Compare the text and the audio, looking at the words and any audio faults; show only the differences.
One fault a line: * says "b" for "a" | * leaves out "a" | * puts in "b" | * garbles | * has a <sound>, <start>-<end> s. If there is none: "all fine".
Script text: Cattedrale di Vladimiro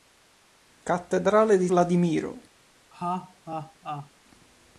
* has a laugh, 2.9-4.1 s